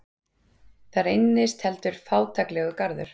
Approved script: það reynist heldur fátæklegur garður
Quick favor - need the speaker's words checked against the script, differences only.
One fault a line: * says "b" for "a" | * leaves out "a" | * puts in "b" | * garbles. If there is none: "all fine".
all fine